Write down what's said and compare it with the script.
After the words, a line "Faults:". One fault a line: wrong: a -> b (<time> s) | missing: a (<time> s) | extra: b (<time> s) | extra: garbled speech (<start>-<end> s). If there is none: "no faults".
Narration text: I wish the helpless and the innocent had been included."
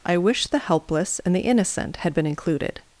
I wish the helpless and the innocent had been included."
Faults:
no faults